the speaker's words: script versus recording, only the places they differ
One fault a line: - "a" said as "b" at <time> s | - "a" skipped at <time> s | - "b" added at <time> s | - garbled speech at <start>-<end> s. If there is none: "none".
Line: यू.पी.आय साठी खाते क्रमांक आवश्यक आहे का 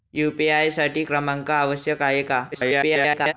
- "खाते" skipped at 1.0 s
- garbled speech at 2.5-3.3 s